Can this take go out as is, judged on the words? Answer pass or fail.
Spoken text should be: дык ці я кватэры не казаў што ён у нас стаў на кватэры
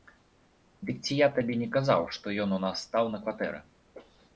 fail